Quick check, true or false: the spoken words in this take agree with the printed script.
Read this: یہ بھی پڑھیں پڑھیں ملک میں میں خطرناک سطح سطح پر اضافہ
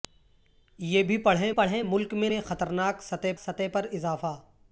true